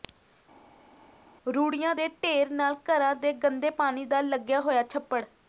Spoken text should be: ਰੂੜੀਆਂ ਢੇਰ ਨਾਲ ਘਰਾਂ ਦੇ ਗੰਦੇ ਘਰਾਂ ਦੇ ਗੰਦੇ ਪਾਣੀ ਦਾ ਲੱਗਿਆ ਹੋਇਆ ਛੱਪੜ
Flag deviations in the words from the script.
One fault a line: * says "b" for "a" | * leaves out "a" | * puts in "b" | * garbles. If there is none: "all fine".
* puts in "ਦੇ"
* leaves out "ਘਰਾਂ ਦੇ ਗੰਦੇ"